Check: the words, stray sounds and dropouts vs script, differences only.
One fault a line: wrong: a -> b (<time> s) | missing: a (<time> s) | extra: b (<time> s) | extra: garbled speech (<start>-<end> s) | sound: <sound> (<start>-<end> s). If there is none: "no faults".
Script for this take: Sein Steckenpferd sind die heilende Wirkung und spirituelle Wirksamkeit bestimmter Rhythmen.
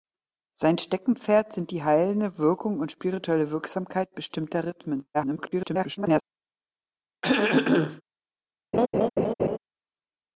extra: garbled speech (5.1-6.2 s)
sound: throat clearing (7.2-8.0 s)
sound: laugh (8.7-9.6 s)